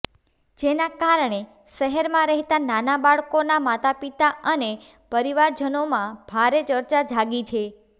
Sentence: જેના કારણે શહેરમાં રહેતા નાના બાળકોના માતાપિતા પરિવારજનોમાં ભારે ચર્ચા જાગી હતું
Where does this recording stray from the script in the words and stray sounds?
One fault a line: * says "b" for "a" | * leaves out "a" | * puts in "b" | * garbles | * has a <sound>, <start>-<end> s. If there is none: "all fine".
* puts in "અને"
* says "છે" for "હતું"